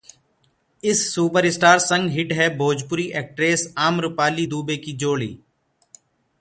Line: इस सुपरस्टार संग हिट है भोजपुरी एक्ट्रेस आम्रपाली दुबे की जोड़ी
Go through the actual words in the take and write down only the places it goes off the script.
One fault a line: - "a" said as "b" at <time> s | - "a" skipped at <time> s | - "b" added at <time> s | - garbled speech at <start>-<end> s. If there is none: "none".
none